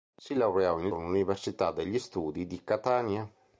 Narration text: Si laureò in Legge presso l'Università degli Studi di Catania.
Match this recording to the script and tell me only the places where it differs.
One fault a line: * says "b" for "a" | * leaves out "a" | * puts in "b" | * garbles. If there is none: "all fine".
* leaves out "Legge presso"